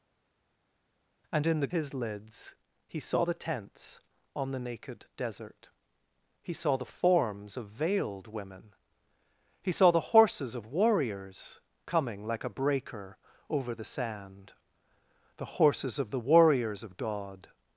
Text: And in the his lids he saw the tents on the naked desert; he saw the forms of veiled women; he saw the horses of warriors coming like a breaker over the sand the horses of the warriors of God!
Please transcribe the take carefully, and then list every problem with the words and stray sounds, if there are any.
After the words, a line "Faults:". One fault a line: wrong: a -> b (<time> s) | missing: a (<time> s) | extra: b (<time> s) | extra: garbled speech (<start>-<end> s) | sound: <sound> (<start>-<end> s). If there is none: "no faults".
And in the his lids he saw the tents on the naked desert; he saw the forms of veiled women; he saw the horses of warriors coming like a breaker over the sand the horses of the warriors of God!
Faults:
no faults